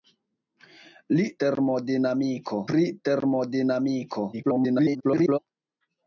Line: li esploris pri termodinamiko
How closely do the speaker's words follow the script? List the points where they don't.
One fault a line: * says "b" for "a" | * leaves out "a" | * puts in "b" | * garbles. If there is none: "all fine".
* says "termodinamiko" for "esploris"
* garbles